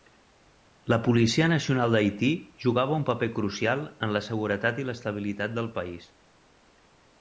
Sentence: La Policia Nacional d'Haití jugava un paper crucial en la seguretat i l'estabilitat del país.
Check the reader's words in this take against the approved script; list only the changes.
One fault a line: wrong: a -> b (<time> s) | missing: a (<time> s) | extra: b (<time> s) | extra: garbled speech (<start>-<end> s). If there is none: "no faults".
no faults